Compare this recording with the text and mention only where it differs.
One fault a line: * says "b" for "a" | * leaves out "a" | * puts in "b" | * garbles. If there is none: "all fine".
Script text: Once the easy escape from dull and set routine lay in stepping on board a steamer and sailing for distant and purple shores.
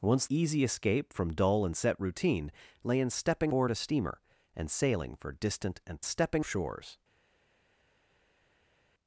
* leaves out "the"
* leaves out "on"
* says "stepping" for "purple"